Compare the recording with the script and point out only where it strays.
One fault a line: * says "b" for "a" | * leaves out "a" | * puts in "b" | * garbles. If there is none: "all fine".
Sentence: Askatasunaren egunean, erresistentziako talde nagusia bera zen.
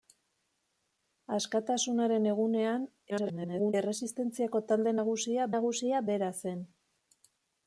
* garbles
* puts in "nagusia"